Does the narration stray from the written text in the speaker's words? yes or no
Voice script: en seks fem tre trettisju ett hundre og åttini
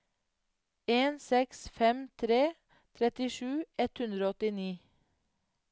no